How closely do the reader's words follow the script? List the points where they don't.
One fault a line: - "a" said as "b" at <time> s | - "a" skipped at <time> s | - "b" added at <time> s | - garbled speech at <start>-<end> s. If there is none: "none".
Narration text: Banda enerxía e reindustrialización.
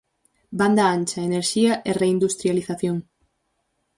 - "ancha" added at 0.9 s